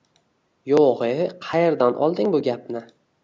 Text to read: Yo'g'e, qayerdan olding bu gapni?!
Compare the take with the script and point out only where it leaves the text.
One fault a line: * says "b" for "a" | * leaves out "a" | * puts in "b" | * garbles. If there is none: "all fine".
all fine